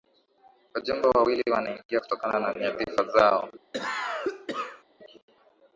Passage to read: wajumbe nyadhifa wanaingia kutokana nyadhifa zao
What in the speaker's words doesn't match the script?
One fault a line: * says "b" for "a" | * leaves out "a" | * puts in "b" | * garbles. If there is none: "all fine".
* says "wawili" for "nyadhifa"
* puts in "na"